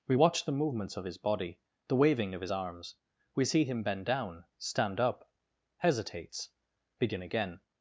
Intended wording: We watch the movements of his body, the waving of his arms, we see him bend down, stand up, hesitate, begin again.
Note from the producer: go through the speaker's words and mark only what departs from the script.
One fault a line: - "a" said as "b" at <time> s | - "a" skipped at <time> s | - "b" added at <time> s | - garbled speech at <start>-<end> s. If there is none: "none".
- "hesitate" said as "hesitates" at 5.8 s